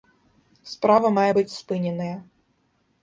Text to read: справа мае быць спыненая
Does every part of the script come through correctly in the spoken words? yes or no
yes